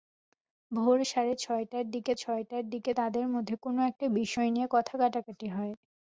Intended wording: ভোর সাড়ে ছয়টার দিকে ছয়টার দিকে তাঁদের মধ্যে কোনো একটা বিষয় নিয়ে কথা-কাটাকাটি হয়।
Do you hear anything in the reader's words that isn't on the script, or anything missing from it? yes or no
no